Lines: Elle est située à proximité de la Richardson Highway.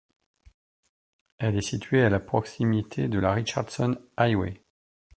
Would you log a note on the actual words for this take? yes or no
no